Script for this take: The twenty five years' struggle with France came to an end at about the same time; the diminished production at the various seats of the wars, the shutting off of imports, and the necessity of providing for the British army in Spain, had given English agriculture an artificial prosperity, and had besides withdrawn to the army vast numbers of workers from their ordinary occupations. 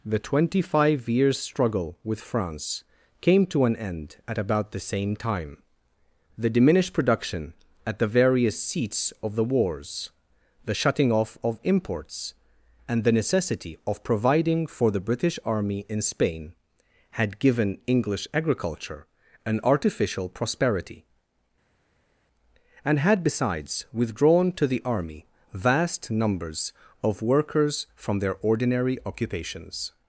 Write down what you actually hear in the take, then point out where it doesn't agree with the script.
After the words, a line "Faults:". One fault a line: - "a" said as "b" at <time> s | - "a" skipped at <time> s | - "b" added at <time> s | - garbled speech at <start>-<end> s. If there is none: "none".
The twenty five years' struggle with France came to an end at about the same time; the diminished production at the various seats of the wars, the shutting off of imports, and the necessity of providing for the British army in Spain, had given English agriculture an artificial prosperity, and had besides withdrawn to the army vast numbers of workers from their ordinary occupations.
Faults:
none